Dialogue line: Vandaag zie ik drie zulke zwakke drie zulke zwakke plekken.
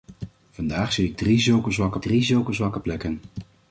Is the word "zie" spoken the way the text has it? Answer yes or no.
yes